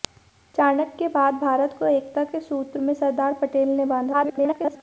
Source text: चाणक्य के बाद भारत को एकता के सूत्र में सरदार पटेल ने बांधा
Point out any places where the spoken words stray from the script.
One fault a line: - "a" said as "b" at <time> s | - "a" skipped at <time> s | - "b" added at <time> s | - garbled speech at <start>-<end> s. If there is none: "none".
- garbled speech at 4.1-4.8 s